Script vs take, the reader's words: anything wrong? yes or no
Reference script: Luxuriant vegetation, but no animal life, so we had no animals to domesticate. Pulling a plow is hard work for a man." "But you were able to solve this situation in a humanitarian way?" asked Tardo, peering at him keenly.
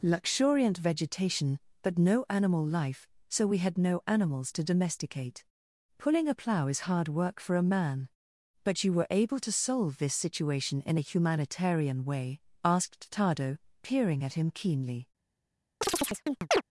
no